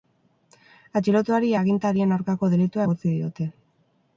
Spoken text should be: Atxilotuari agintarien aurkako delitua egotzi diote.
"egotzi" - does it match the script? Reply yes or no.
yes